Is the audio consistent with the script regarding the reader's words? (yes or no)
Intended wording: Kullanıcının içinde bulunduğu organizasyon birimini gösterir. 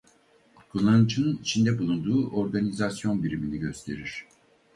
yes